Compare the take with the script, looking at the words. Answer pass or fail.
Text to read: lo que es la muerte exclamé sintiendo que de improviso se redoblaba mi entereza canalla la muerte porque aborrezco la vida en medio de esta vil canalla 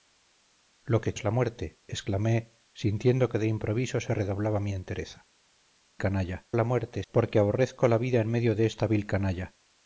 pass